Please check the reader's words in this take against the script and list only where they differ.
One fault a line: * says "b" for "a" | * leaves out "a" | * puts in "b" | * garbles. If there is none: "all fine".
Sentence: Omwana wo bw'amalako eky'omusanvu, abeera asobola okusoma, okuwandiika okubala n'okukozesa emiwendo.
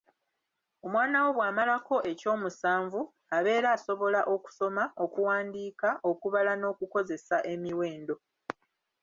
all fine